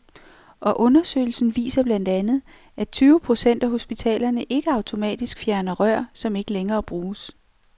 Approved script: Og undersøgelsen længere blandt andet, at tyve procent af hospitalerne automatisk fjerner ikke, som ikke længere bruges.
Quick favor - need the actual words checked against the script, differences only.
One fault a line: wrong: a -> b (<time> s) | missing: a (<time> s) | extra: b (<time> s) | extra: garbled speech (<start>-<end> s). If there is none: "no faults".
wrong: længere -> viser (1.6 s)
extra: ikke (4.4 s)
wrong: ikke -> rør (5.7 s)